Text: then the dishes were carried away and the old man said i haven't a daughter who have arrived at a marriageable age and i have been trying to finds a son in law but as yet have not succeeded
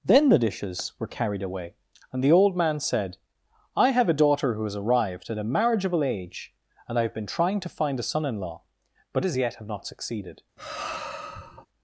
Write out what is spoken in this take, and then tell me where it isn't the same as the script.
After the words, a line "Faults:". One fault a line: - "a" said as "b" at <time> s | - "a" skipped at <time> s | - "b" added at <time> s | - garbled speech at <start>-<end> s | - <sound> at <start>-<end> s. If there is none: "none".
then the dishes were carried away and the old man said i have a daughter who has arrived at a marriageable age and i have been trying to find a son in law but as yet have not succeeded
Faults:
- "haven't" said as "have" at 3.9 s
- "have" said as "has" at 4.6 s
- "finds" said as "find" at 7.7 s
- sigh at 10.6-11.7 s